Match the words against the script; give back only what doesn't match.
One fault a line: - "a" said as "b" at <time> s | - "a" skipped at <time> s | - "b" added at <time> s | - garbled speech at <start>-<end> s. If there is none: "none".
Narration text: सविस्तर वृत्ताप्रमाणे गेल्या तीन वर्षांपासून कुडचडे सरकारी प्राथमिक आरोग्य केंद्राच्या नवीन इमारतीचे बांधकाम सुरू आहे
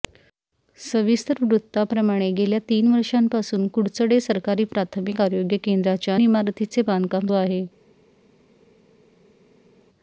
- "नवीन" skipped at 6.2 s
- "सुरू" skipped at 7.3 s